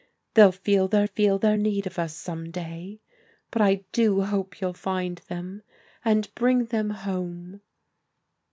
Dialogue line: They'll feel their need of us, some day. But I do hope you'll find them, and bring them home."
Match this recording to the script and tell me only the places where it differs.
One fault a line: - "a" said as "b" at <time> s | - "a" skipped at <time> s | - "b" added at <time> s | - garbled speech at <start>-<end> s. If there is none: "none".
- "feel their" added at 1.0 s